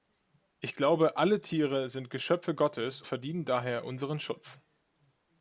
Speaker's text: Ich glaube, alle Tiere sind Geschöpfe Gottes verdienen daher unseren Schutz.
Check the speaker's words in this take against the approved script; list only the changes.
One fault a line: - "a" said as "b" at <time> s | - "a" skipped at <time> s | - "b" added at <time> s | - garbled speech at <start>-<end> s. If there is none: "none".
none